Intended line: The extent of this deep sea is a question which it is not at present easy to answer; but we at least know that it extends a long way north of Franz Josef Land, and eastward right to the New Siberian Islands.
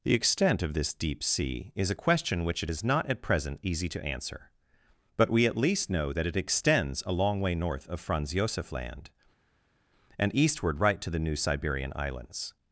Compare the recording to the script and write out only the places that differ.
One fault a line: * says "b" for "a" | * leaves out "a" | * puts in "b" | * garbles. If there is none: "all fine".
all fine